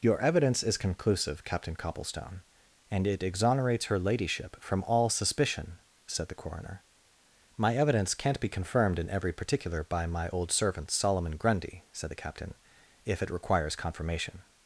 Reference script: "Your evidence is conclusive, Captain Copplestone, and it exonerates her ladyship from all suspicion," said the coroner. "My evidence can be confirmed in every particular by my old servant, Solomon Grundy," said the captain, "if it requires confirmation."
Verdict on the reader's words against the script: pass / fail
fail